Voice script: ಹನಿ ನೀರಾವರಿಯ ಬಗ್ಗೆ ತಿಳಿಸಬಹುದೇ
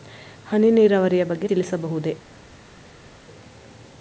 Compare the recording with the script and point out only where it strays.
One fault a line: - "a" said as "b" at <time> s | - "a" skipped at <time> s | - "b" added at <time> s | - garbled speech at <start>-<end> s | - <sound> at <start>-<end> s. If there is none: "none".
none